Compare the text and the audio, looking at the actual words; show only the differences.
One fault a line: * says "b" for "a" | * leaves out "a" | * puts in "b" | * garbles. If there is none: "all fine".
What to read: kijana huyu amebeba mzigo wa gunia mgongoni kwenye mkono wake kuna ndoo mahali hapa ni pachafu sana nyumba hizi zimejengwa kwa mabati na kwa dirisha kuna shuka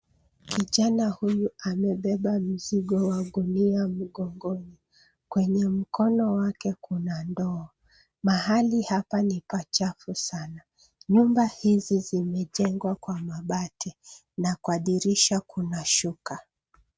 all fine